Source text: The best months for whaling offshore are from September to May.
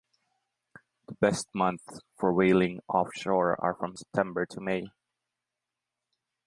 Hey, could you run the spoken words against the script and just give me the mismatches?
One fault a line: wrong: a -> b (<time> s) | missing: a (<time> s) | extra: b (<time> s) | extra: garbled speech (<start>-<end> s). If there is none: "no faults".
no faults